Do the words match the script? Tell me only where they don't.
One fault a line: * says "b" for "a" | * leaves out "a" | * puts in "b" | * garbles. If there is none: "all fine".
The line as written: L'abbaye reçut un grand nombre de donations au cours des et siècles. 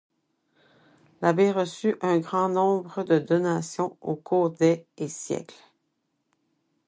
all fine